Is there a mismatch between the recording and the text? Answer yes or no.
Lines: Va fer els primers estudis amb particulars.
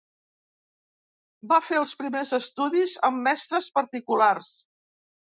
yes